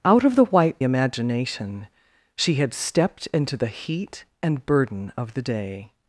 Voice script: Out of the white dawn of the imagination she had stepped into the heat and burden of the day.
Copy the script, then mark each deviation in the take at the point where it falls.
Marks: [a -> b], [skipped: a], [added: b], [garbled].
Out of the white [skipped: dawn of the] imagination she had stepped into the heat and burden of the day.